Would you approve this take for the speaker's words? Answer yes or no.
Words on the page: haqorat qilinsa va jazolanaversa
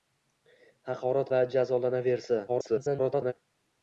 no